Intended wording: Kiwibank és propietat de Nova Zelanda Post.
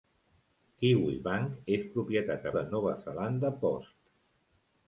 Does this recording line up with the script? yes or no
yes